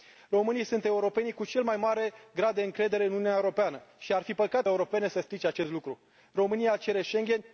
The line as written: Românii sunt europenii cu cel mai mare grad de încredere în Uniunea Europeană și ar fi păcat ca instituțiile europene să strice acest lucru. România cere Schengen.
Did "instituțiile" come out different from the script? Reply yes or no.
yes